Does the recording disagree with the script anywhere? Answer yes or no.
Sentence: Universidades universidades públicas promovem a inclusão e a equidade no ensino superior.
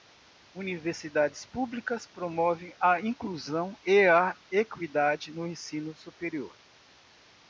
yes